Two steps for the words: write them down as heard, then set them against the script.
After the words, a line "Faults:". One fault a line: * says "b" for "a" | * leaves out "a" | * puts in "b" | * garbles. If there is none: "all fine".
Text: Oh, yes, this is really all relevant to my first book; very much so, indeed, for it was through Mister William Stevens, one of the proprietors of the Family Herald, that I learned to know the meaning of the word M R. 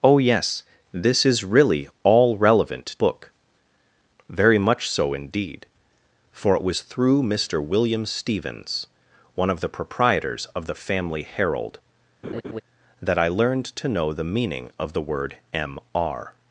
Oh, yes, this is really all relevant book; very much so, indeed, for it was through Mister William Stevens, one of the proprietors of the Family Herald, that I learned to know the meaning of the word M R.
Faults:
* leaves out "to my first"